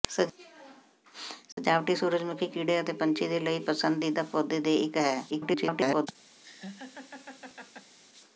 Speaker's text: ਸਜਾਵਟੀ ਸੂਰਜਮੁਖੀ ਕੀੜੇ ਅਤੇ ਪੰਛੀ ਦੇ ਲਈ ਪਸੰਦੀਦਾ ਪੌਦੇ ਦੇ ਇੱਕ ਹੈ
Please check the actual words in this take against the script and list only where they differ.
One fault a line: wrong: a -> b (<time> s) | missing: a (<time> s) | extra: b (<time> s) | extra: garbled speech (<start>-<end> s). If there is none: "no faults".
extra: garbled speech (5.3-6.1 s)